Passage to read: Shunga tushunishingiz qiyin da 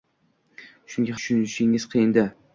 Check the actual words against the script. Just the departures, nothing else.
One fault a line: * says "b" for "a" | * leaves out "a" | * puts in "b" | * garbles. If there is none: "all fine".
all fine